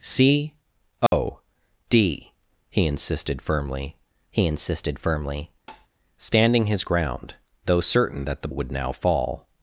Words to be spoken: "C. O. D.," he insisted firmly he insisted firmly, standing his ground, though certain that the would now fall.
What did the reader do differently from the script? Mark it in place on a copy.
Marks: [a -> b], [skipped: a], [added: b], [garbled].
"C. O. D.," he insisted firmly he insisted firmly, standing his ground, though certain that the would now fall.